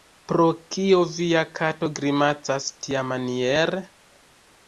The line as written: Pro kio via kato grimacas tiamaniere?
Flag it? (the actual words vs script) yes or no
no